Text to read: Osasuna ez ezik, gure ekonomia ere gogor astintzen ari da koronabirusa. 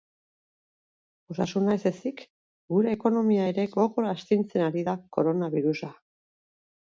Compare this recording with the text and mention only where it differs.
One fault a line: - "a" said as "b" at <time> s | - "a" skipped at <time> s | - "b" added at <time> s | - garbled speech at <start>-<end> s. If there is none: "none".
none